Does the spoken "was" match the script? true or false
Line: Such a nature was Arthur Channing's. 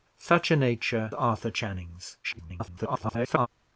false